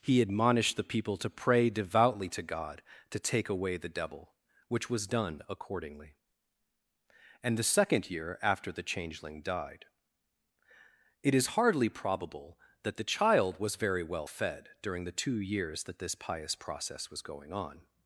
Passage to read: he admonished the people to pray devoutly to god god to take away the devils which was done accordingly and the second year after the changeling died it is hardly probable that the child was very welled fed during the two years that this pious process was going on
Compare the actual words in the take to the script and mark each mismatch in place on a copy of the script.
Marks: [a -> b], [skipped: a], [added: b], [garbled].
he admonished the people to pray devoutly to god [skipped: god] to take away the [devils -> devil] which was done accordingly and the second year after the changeling died it is hardly probable that the child was very [welled -> well] fed during the two years that this pious process was going on